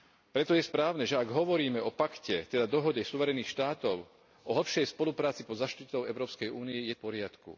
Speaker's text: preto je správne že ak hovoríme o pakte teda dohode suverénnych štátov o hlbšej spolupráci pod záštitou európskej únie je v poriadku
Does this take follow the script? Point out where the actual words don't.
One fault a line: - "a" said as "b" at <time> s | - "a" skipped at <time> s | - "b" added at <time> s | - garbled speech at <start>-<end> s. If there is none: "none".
none